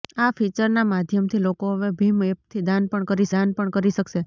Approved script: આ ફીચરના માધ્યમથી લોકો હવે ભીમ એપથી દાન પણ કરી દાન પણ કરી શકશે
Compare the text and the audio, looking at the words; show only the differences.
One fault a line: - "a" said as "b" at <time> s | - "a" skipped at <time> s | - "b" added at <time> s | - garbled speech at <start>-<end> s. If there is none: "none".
none